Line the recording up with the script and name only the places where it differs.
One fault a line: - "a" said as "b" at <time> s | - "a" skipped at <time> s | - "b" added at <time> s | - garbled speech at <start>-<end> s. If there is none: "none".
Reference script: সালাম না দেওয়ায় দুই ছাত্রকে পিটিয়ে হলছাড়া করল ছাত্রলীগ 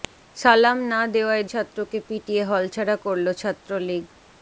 - "দুই" skipped at 1.4 s